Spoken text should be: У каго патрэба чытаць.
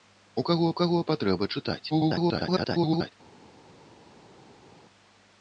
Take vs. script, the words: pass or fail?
fail